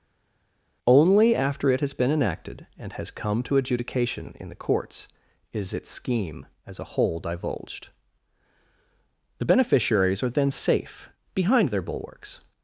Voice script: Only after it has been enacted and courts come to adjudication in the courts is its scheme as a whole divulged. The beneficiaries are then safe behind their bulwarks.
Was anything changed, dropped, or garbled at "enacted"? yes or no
no